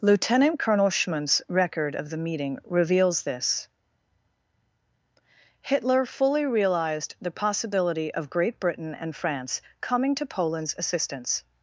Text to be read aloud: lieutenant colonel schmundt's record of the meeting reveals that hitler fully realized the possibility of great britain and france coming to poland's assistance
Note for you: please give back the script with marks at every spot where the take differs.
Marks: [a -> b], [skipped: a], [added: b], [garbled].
lieutenant colonel schmundt's record of the meeting reveals [that -> this] hitler fully realized the possibility of great britain and france coming to poland's assistance